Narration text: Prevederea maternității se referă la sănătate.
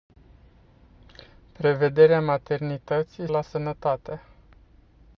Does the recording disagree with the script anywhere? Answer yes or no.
yes